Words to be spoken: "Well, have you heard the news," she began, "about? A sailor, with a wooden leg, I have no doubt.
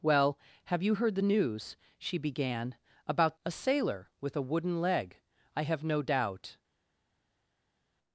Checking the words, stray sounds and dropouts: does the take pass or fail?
pass